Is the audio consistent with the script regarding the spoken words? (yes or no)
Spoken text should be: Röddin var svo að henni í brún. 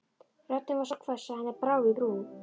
no